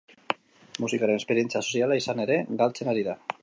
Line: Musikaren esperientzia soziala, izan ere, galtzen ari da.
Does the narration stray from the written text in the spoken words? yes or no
no